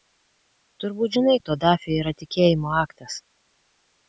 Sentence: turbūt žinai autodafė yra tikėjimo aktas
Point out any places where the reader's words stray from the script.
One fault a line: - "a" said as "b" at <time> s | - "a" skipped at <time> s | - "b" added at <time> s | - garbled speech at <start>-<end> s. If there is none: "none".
none